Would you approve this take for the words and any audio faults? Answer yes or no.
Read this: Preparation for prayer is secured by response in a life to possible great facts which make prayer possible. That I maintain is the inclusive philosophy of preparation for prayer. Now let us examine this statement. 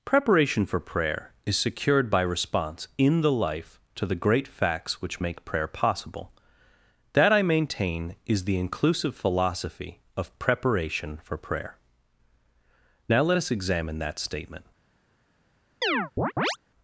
no